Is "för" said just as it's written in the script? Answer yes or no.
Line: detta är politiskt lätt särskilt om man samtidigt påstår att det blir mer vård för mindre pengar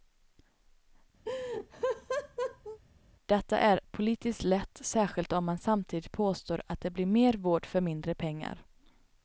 yes